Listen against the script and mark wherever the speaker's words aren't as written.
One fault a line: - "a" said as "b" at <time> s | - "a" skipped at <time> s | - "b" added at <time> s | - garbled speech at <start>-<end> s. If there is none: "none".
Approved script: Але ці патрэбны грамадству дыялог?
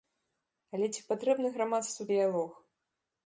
none